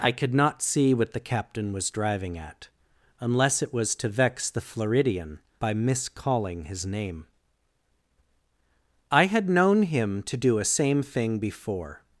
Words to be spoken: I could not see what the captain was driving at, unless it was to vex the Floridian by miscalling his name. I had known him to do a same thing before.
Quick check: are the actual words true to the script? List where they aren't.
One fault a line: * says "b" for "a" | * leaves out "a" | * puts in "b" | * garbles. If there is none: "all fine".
all fine